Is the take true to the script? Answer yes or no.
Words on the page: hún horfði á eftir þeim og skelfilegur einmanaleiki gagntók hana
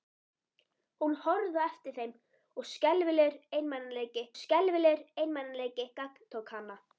no